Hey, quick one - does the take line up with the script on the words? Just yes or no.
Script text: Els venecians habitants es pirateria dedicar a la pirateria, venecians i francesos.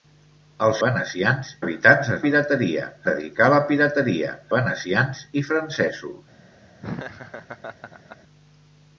yes